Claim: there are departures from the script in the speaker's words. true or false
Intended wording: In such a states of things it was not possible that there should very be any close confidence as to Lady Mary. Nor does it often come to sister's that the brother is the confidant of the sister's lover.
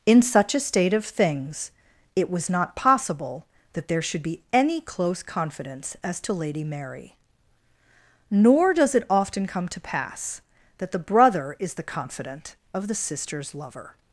true